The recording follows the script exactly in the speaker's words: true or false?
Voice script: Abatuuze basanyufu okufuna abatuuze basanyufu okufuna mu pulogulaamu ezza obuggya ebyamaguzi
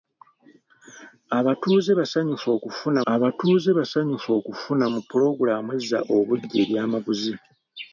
true